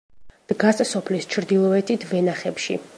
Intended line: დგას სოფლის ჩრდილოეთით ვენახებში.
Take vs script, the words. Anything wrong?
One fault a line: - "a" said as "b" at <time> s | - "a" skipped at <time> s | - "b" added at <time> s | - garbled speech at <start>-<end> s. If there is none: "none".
none